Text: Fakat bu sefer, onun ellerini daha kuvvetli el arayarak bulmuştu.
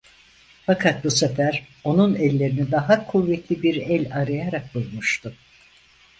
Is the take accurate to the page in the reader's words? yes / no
no